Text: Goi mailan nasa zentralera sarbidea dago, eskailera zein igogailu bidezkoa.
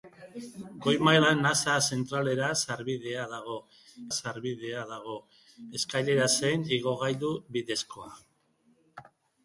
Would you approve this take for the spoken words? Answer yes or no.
no